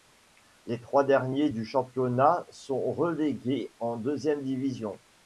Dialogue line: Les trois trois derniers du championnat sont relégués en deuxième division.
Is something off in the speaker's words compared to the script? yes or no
yes